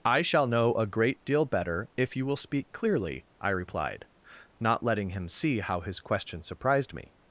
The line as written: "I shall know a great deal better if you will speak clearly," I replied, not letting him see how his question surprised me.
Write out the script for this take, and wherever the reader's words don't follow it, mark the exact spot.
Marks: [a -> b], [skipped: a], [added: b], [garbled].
"I shall know a great deal better if you will speak clearly," I replied, not letting him see how his question surprised me.